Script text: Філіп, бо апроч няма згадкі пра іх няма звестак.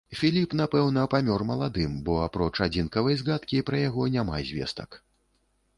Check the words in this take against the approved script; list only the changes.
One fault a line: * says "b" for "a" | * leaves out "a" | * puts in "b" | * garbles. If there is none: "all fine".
* puts in "напэўна памёр маладым"
* says "адзінкавай" for "няма"
* says "яго" for "іх"